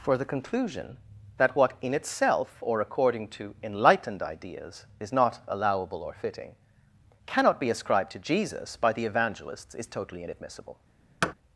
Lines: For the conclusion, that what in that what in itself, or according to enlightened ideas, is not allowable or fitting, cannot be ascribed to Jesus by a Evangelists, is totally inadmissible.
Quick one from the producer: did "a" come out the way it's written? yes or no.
no